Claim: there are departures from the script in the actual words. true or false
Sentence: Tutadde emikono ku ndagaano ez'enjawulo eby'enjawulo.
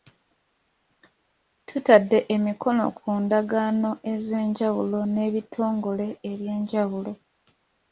true